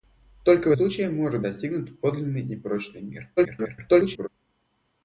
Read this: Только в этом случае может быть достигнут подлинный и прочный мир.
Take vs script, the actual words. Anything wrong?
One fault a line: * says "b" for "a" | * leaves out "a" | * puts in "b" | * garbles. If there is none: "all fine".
* leaves out "этом"
* leaves out "быть"
* garbles